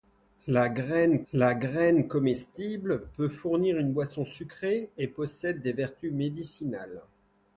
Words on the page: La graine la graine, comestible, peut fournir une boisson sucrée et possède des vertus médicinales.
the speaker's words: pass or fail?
pass